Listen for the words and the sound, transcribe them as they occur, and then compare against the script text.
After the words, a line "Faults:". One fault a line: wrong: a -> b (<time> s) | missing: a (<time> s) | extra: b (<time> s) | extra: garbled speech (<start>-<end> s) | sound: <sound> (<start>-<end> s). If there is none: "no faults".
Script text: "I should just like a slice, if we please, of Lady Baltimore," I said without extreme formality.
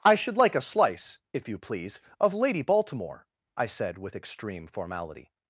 "I should like a slice, if you please, of Lady Baltimore," I said with extreme formality.
Faults:
missing: just (0.3 s)
wrong: we -> you (1.5 s)
wrong: without -> with (4.0 s)